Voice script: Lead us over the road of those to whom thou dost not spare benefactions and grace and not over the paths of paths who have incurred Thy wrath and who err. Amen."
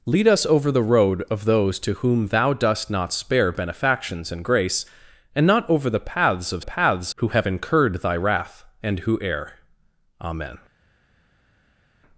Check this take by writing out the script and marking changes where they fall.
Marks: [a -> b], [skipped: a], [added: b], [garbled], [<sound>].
Lead us over the road of those to whom thou dost not spare benefactions and grace and not over the paths of paths who have incurred Thy wrath and who err. Amen."